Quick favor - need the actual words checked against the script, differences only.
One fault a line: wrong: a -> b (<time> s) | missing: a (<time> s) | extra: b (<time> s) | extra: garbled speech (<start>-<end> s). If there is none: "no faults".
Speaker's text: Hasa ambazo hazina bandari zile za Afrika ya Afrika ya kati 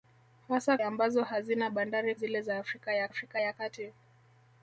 no faults